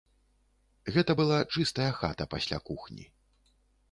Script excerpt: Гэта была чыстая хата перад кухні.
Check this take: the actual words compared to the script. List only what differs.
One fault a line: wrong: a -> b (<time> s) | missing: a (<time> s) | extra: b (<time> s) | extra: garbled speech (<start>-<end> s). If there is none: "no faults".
wrong: перад -> пасля (2.3 s)